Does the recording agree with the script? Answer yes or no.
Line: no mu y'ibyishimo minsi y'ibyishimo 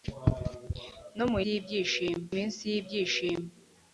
yes